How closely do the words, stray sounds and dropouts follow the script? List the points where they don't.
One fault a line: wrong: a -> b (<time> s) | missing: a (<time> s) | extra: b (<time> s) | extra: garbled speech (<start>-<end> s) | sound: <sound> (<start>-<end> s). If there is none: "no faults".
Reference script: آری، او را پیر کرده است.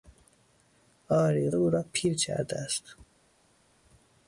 no faults